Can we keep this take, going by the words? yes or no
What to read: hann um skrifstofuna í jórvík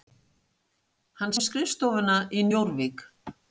yes